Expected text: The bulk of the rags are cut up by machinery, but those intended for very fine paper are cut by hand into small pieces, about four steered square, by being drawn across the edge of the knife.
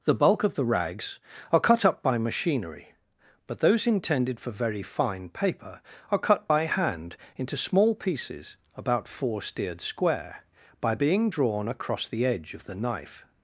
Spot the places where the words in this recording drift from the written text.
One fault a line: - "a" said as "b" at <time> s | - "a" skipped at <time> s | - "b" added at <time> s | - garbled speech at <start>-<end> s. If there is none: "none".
none